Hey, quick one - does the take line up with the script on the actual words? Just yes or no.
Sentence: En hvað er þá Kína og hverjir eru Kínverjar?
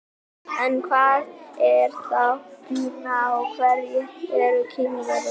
yes